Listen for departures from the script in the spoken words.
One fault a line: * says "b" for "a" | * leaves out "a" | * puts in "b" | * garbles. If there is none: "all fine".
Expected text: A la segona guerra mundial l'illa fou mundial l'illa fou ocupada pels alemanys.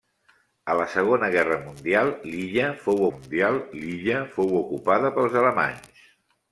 all fine